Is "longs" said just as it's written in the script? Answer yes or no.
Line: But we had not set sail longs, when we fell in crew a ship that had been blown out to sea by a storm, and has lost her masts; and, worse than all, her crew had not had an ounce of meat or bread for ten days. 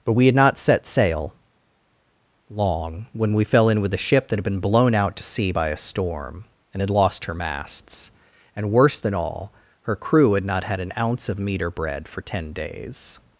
no